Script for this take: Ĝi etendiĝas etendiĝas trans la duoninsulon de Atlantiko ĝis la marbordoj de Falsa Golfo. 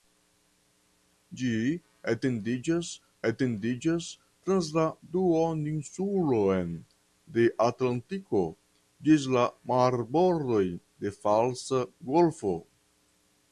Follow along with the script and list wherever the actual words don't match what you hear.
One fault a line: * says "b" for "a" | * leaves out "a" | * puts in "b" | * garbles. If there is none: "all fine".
all fine